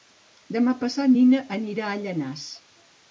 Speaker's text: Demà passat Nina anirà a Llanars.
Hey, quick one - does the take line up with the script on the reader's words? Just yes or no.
yes